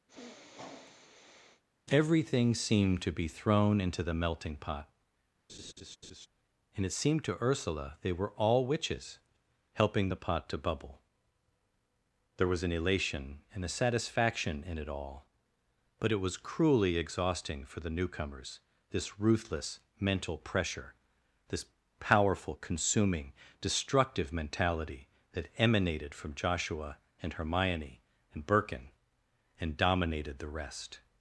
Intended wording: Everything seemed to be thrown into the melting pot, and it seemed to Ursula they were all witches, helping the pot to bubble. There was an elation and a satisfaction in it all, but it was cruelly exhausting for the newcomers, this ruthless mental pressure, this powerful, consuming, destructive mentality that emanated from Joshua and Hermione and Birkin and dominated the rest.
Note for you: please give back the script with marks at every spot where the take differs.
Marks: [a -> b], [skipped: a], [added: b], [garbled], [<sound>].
[sniff] Everything seemed to be thrown into the melting pot, [laugh] and it seemed to Ursula they were all witches, helping the pot to bubble. There was an elation and a satisfaction in it all, but it was cruelly exhausting for the newcomers, this ruthless mental pressure, this powerful, consuming, destructive mentality that emanated from Joshua and Hermione and Birkin and dominated the rest.